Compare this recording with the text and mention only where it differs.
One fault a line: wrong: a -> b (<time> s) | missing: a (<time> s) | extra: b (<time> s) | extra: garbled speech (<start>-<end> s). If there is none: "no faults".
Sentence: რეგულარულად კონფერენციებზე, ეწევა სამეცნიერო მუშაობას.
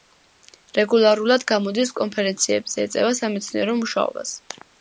extra: გამოდის (1.5 s)